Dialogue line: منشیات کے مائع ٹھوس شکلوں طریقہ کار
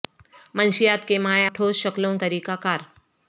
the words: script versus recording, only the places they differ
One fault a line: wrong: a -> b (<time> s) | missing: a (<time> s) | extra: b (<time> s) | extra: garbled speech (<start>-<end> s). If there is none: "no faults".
no faults